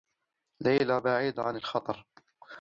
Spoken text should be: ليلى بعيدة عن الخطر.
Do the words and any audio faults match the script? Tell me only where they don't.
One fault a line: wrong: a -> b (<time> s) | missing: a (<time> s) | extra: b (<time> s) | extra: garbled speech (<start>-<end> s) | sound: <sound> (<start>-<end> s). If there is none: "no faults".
no faults